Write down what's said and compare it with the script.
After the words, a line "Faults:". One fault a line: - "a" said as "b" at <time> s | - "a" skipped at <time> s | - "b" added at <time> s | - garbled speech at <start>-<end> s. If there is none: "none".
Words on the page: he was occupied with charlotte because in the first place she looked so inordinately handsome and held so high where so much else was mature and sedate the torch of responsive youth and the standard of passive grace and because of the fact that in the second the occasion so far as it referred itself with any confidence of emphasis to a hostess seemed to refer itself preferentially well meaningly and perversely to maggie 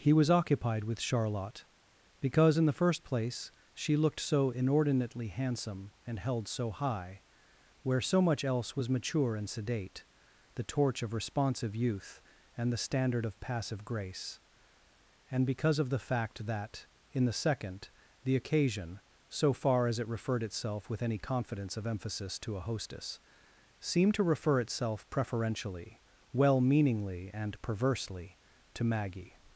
he was occupied with charlotte because in the first place she looked so inordinately handsome and held so high where so much else was mature and sedate the torch of responsive youth and the standard of passive grace and because of the fact that in the second the occasion so far as it referred itself with any confidence of emphasis to a hostess seemed to refer itself preferentially well meaningly and perversely to maggie
Faults:
none